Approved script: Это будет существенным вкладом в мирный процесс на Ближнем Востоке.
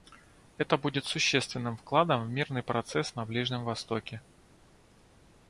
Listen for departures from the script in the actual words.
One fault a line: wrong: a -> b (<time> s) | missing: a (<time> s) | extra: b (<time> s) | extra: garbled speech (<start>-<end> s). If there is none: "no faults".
no faults